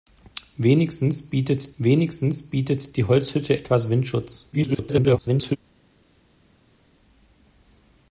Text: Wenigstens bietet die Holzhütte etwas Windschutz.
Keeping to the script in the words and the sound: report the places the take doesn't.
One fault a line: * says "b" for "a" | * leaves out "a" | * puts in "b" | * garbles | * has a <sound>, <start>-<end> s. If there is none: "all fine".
* puts in "wenigstens bietet"
* garbles